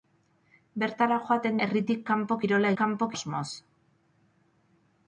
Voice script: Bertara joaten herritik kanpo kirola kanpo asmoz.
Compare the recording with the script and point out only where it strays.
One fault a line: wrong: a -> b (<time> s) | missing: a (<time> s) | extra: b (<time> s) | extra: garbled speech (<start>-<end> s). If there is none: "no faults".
no faults